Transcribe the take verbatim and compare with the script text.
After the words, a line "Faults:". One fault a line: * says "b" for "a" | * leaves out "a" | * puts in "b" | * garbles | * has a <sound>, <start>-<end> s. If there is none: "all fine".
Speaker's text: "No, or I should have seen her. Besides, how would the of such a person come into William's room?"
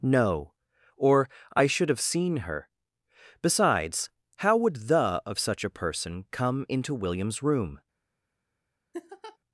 "No, or I should have seen her. Besides, how would the of such a person come into William's room?"
Faults:
* has a laugh, 8.9-9.4 s